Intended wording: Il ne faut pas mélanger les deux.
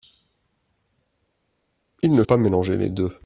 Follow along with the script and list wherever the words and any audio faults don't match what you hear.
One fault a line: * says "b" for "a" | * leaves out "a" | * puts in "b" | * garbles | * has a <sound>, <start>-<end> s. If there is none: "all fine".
* leaves out "faut"